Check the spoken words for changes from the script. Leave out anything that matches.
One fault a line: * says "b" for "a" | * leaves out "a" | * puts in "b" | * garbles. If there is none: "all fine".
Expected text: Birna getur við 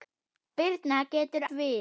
all fine